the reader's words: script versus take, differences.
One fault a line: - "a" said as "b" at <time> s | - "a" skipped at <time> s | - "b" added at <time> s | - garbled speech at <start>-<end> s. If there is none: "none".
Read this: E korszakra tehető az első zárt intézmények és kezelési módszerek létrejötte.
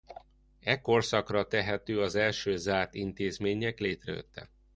- "és kezelési módszerek" skipped at 3.8 s